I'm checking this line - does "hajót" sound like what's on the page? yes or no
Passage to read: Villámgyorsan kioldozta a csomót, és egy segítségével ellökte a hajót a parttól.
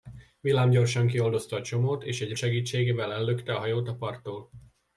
yes